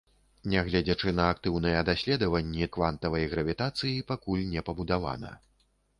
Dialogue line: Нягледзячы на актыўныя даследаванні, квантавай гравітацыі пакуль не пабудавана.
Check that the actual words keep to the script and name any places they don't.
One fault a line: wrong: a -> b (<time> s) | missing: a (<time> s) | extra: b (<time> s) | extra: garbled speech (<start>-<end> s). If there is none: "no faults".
no faults